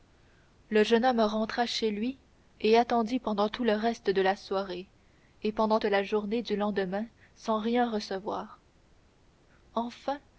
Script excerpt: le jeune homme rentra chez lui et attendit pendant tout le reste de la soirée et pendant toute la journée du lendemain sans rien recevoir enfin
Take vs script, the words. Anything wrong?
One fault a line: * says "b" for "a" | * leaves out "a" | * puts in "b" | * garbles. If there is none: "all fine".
* leaves out "toute"